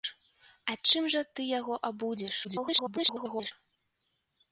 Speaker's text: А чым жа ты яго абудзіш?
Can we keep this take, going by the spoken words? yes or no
no